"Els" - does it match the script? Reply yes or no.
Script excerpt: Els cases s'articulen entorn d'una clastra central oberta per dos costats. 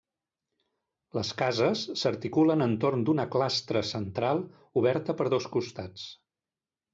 no